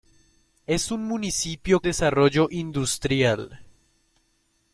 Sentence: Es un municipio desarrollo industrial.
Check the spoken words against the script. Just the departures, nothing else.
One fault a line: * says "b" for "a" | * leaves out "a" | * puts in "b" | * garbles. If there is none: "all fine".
all fine